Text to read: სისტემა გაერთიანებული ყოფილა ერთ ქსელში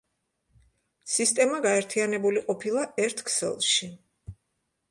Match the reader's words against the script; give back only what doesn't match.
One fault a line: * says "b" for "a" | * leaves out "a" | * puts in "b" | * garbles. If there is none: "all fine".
all fine